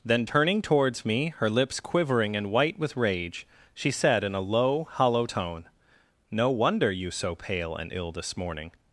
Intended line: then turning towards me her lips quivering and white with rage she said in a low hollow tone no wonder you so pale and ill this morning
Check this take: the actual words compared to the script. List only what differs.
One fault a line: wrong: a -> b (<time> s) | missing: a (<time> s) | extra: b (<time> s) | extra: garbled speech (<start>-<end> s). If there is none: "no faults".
no faults